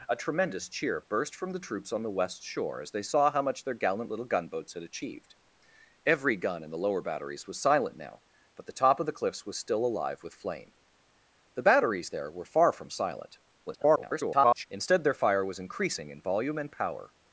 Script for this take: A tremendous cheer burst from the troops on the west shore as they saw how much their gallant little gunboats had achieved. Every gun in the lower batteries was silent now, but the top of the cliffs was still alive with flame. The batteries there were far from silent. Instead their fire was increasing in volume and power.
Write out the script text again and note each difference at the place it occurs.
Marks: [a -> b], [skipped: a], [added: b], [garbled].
A tremendous cheer burst from the troops on the west shore as they saw how much their gallant little gunboats had achieved. Every gun in the lower batteries was silent now, but the top of the cliffs was still alive with flame. The batteries there were far from silent. [garbled] Instead their fire was increasing in volume and power.